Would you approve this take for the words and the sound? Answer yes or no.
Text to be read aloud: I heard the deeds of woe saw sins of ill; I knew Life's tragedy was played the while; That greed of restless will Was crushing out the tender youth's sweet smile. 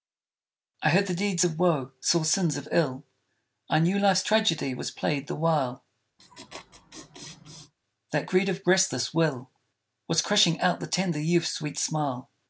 no